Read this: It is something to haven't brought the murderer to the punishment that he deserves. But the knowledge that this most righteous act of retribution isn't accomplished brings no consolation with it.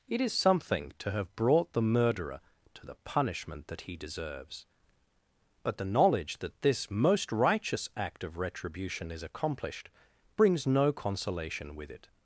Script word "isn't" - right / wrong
wrong